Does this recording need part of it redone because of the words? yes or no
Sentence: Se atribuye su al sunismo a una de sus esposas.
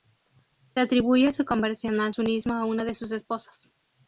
yes